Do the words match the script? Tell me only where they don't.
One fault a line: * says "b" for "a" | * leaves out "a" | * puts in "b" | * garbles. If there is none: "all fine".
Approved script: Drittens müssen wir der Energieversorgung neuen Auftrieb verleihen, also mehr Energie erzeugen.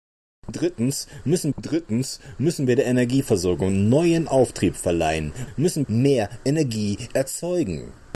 * puts in "drittens müssen"
* says "müssen" for "also"